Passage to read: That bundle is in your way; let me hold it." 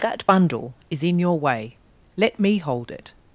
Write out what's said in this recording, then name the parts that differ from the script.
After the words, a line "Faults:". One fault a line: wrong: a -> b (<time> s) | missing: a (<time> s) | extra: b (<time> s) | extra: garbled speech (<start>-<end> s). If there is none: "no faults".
That bundle is in your way; let me hold it."
Faults:
no faults